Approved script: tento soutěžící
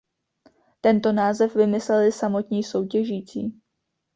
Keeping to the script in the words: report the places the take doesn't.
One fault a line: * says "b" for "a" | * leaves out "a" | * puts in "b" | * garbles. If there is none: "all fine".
* puts in "název vymysleli samotní"